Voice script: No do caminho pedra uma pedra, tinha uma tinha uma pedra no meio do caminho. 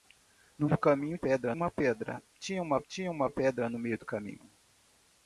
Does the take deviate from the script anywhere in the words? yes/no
no